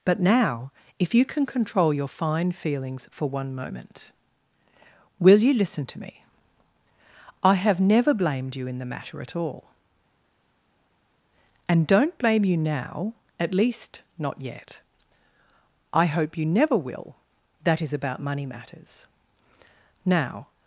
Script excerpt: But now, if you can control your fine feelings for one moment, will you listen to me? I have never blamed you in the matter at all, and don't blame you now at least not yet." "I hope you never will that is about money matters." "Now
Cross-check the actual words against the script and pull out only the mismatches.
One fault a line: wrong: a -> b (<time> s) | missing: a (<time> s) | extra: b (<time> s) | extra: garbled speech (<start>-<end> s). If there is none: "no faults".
no faults